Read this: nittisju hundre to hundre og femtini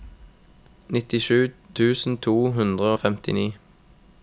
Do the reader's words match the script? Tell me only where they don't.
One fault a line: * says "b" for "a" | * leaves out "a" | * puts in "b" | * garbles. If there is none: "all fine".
* says "tusen" for "hundre"